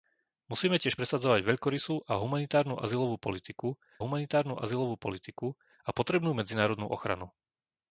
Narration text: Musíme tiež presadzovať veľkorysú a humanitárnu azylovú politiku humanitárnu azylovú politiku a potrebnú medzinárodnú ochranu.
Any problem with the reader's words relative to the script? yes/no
no